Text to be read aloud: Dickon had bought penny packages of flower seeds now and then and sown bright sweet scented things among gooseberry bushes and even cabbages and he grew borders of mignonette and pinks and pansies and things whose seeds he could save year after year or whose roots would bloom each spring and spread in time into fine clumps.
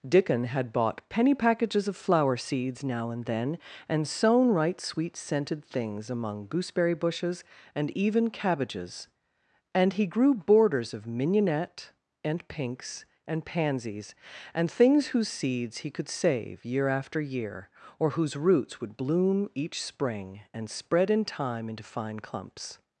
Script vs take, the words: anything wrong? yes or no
yes